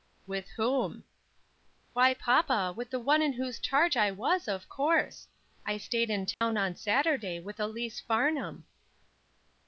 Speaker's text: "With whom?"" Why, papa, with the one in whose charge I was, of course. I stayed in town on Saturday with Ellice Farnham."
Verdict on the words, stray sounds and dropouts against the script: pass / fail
fail